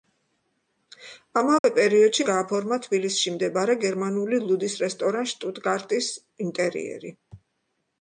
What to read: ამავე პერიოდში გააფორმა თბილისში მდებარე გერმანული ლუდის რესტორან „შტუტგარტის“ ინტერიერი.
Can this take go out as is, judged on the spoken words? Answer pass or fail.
pass